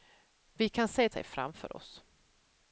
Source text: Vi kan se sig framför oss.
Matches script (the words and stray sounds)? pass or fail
pass